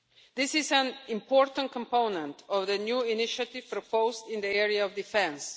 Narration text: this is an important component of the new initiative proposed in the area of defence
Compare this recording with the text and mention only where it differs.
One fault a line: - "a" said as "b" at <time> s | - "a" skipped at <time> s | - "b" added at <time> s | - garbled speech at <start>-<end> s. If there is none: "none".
none